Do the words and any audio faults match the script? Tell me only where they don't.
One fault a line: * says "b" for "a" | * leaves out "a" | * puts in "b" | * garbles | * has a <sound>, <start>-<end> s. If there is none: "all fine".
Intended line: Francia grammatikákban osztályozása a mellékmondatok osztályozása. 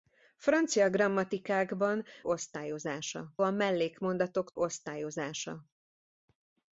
all fine